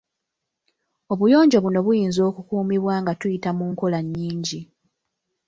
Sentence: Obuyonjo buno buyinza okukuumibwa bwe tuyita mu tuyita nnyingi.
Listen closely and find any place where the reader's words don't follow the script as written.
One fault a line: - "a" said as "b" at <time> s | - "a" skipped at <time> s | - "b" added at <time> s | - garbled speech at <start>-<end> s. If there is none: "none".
- "bwe" said as "nga" at 3.0 s
- "tuyita" said as "nkola" at 3.7 s